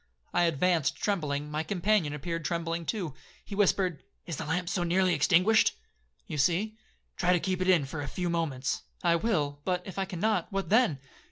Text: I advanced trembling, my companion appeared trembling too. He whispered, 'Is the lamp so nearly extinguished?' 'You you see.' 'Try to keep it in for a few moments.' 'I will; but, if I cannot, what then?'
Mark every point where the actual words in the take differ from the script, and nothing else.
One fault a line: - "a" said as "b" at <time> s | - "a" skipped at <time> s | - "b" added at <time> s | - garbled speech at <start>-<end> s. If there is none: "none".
- "you" skipped at 6.4 s